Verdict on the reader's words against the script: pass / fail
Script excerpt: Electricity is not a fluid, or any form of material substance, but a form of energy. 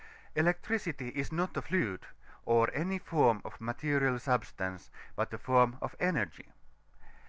pass